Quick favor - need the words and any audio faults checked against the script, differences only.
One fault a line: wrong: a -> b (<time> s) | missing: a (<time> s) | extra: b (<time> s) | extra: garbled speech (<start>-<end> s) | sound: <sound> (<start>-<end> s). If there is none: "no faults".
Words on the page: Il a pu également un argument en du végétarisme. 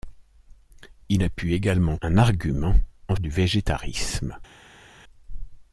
no faults